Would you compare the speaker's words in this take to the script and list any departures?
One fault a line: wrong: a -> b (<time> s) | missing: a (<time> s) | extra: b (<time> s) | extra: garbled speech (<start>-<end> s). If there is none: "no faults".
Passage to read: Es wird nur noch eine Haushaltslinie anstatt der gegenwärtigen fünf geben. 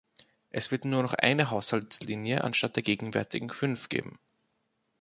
no faults